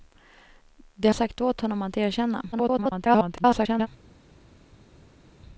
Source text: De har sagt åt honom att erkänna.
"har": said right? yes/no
no